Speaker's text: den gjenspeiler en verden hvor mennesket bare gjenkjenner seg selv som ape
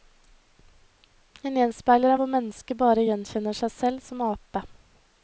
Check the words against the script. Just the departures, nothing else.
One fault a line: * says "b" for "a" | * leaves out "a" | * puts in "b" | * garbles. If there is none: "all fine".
* leaves out "en verden"